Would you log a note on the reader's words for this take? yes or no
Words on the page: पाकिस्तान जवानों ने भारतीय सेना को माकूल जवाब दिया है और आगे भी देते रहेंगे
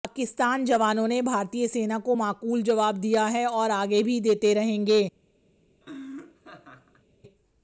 no